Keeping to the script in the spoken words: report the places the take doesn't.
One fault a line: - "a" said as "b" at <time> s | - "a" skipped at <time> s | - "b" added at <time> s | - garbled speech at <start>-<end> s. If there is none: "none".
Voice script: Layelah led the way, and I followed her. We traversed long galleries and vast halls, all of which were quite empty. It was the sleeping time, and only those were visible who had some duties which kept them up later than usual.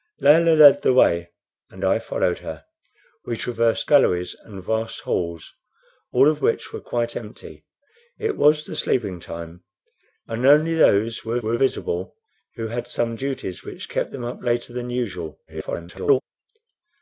- "long" skipped at 3.9 s
- "were" added at 11.4 s
- garbled speech at 15.5-16.2 s